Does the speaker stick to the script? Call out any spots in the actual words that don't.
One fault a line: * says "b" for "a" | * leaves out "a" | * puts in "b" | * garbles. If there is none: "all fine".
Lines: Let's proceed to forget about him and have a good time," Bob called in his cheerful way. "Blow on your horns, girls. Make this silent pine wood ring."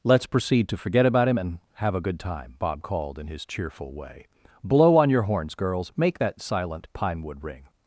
* says "that" for "this"